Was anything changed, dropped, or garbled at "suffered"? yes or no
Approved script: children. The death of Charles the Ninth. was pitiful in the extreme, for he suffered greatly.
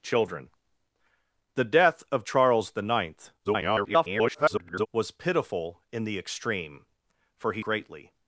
yes